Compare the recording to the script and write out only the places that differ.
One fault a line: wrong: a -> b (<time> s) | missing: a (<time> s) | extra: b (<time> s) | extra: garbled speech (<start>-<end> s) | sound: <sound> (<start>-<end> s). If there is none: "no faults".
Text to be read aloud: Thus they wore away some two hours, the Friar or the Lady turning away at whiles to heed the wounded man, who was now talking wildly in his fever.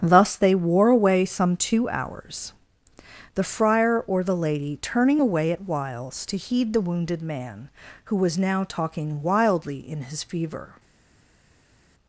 no faults